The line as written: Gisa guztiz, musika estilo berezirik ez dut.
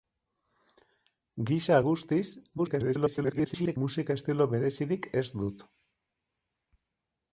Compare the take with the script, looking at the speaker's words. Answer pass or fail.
fail